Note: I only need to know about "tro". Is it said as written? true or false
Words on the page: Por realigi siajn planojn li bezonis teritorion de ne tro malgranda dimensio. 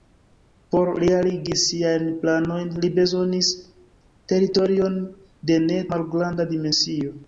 false